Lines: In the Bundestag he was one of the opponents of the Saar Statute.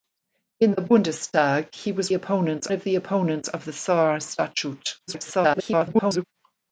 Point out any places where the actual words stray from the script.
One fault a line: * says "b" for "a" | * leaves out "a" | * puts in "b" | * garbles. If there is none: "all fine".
* says "opponents" for "one"
* garbles